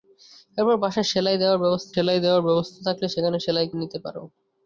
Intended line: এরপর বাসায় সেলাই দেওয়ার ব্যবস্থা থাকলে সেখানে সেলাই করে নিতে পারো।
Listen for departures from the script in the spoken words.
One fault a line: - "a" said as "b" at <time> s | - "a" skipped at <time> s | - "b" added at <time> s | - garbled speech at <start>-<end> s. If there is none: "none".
- "সেলাই দেওয়ার ব্যবস্থা" added at 1.9 s
- "করে" skipped at 3.7 s